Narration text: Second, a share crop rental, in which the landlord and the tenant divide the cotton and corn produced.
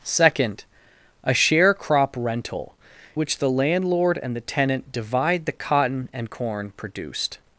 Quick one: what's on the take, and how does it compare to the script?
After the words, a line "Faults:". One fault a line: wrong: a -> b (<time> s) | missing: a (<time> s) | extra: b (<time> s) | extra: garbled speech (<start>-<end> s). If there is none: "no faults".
Second, a share crop rental, which the landlord and the tenant divide the cotton and corn produced.
Faults:
missing: in (2.8 s)